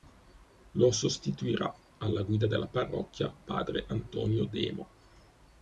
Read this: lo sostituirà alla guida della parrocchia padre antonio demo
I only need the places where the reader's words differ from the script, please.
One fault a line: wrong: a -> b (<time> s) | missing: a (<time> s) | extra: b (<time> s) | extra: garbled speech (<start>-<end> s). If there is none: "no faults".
no faults